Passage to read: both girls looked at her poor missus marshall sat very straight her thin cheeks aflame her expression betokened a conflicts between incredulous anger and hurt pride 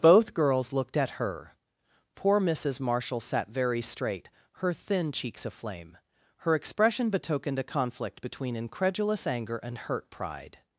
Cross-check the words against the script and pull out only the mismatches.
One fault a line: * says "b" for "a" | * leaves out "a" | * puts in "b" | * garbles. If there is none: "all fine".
* says "conflict" for "conflicts"